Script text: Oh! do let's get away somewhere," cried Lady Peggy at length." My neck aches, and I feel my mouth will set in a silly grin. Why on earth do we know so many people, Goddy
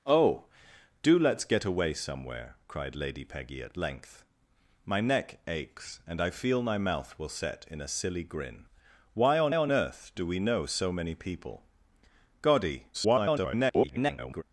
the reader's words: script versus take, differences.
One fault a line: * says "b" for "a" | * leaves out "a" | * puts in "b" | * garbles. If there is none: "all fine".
* puts in "on"
* garbles